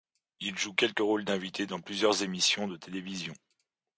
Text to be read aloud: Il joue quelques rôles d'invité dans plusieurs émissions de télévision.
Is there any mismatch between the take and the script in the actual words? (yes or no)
no